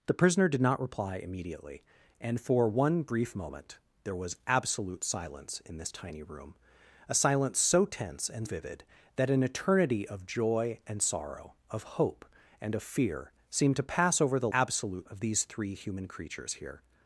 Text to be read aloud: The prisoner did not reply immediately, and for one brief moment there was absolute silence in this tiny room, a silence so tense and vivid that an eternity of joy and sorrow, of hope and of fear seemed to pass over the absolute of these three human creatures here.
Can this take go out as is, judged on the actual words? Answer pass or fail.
pass